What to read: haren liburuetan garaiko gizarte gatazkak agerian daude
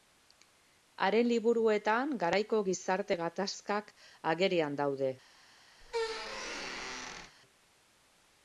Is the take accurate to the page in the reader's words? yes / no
yes